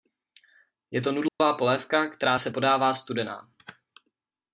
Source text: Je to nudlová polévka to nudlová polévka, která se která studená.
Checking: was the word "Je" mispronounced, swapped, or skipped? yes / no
no